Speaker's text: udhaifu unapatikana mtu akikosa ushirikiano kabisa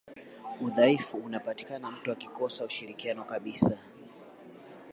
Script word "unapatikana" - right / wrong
right